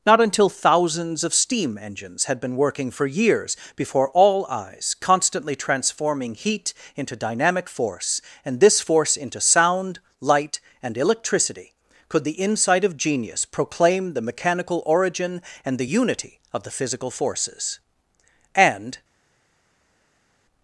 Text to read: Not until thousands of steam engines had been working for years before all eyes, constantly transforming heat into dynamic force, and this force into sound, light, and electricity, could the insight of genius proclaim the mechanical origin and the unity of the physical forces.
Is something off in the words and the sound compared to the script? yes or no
yes